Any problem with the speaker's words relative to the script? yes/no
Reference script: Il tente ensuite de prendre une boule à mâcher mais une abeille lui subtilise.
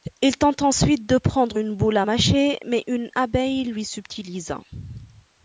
no